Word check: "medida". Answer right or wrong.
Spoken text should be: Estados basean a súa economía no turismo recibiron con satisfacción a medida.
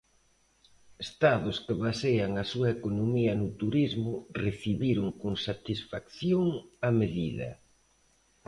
right